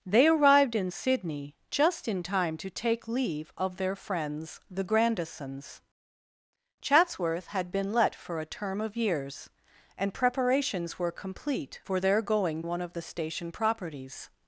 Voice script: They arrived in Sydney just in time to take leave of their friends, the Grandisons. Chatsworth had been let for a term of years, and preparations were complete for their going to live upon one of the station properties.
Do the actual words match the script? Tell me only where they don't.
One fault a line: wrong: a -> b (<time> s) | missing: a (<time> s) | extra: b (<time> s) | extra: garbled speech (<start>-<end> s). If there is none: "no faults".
missing: to live upon (12.6 s)